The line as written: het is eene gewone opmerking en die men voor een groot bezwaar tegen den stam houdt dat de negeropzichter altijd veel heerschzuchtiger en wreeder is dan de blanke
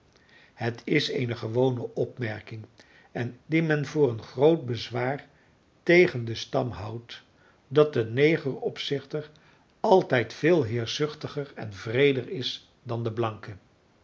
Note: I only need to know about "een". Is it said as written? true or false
true